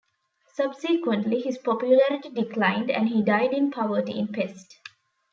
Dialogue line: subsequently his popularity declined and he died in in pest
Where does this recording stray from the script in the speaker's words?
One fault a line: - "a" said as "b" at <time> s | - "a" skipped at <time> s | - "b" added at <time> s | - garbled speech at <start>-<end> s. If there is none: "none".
- "poverty" added at 3.7 s